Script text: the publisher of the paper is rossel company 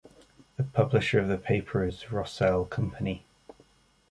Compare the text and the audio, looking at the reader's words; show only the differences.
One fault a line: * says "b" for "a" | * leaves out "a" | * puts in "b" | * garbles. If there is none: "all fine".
all fine